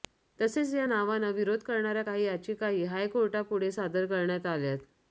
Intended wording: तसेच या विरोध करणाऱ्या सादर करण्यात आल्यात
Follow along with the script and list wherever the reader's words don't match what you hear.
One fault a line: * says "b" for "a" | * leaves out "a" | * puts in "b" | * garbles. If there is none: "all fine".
* puts in "नावांना"
* puts in "काही याचिकाही हायकोर्टापुढे"